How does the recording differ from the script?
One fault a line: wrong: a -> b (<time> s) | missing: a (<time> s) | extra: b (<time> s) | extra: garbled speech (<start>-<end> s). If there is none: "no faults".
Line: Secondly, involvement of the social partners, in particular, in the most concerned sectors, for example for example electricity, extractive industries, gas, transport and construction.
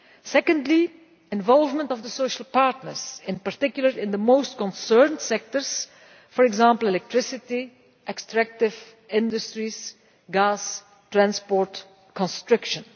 missing: for example (6.9 s)